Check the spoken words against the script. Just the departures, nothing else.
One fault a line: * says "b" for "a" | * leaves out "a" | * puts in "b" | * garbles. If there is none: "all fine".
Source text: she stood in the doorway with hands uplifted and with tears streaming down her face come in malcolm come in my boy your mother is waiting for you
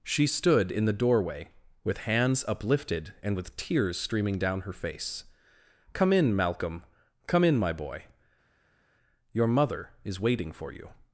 all fine